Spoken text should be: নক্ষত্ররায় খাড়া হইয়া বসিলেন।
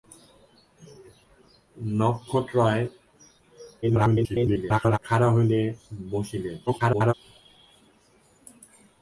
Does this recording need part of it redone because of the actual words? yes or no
yes